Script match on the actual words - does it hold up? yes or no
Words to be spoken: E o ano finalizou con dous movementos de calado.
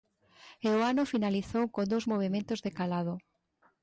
yes